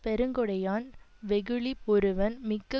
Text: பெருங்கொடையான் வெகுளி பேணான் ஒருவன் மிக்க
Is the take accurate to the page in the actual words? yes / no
no